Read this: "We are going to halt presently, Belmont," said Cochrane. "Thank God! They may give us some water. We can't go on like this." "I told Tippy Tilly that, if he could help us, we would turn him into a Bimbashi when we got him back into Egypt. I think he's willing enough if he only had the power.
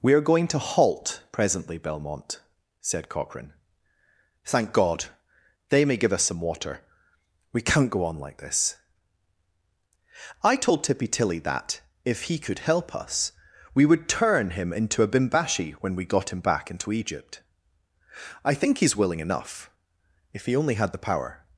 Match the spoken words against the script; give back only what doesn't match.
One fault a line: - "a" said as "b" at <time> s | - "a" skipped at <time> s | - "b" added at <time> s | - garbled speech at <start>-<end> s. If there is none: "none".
none